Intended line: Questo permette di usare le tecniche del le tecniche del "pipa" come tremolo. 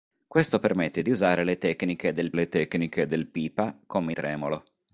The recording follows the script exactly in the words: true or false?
true